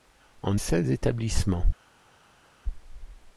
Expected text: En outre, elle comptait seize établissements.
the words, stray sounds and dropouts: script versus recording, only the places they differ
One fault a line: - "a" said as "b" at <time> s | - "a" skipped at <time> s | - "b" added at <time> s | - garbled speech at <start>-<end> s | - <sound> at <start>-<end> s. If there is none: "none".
- "outre elle comptait" skipped at 0.6 s